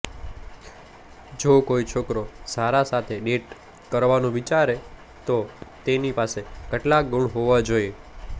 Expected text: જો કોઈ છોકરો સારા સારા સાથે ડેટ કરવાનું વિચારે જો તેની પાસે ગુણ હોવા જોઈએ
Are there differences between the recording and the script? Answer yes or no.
yes